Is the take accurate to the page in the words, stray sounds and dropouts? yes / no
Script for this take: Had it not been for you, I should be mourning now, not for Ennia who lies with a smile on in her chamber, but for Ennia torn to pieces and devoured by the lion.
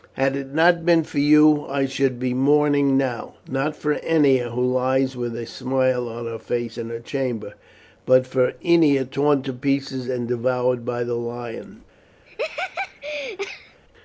no